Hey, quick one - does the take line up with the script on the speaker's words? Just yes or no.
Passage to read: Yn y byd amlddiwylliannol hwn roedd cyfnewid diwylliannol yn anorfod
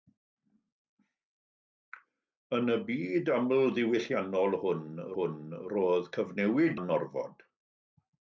no